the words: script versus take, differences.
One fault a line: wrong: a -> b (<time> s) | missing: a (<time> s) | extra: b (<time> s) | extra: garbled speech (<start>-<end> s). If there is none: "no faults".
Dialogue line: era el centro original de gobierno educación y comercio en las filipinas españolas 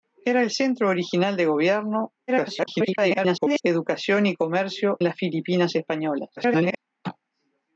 extra: garbled speech (2.3-3.6 s)
missing: en (5.0 s)
extra: garbled speech (6.4-6.8 s)